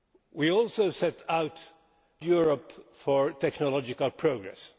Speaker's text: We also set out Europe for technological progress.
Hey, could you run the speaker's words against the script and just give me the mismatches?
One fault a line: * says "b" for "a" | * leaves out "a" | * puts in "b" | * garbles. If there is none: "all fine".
all fine